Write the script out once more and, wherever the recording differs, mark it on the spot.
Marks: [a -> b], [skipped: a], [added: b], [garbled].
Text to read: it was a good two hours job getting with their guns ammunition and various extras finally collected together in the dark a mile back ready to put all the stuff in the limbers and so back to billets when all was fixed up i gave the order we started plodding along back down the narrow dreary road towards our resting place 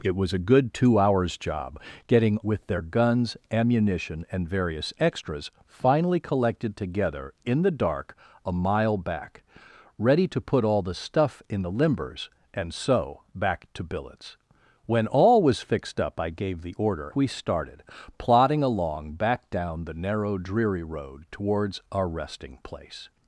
it was a good two hours job getting with their guns ammunition and various extras finally collected together in the dark a mile back ready to put all the stuff in the limbers and so back to billets when all was fixed up i gave the order we started plodding along back down the narrow dreary road towards our resting place